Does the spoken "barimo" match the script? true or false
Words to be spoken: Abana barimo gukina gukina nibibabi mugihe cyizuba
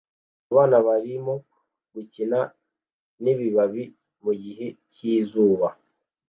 true